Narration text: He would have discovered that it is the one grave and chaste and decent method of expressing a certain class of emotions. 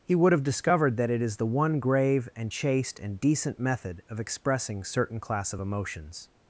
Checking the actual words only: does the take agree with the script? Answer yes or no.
no